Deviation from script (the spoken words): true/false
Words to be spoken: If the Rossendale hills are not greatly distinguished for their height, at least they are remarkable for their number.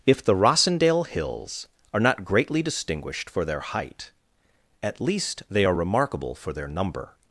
false